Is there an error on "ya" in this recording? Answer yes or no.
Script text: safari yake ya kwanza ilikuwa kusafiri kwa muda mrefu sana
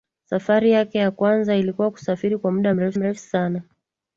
no